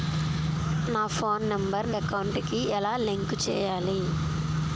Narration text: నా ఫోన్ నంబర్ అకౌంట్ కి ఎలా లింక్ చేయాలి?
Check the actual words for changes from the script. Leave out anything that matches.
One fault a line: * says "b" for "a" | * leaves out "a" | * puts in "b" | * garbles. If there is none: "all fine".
all fine